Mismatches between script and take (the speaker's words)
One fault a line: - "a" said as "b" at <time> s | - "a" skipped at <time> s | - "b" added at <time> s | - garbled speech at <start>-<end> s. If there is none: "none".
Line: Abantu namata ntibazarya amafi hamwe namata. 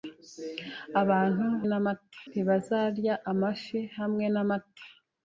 none